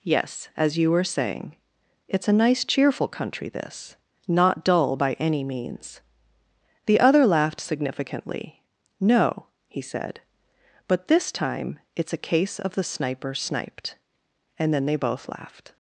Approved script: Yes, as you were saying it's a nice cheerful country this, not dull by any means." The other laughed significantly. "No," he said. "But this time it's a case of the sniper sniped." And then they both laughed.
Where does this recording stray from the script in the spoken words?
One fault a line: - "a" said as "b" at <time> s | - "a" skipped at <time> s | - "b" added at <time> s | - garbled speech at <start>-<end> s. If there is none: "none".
none